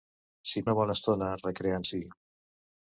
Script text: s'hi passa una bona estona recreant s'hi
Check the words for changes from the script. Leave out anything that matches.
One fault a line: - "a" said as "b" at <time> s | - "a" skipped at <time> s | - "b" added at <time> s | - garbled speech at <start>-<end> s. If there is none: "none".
- "passa" skipped at 0.6 s